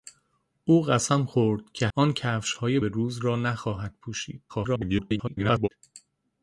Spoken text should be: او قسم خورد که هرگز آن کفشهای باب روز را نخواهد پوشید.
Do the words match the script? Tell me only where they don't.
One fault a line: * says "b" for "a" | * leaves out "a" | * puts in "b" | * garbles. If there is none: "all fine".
* leaves out "هرگز"
* leaves out "باب"
* garbles